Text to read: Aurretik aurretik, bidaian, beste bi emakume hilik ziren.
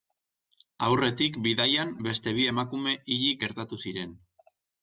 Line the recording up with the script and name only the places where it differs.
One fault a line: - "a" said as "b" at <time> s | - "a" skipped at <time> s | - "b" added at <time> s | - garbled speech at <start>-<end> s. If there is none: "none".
- "aurretik" skipped at 1.4 s
- "gertatu" added at 3.4 s